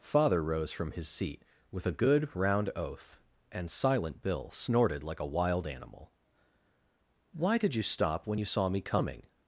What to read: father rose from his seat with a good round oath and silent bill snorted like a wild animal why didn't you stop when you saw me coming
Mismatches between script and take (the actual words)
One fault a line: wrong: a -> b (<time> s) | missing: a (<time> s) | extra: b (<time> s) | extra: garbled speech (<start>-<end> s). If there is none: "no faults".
wrong: didn't -> did (7.6 s)